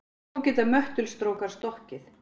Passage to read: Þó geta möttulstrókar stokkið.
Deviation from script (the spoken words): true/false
false